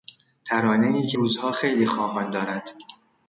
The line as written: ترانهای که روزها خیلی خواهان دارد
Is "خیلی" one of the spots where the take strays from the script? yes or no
no